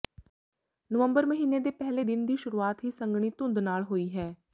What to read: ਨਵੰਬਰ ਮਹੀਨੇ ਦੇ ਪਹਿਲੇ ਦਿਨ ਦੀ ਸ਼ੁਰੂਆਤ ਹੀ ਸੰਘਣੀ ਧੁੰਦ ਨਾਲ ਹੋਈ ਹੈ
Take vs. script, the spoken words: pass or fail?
pass